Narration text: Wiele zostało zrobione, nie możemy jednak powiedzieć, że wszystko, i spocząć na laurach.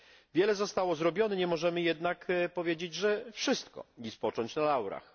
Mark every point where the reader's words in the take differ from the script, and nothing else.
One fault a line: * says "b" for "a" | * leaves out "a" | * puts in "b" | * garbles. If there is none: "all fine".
all fine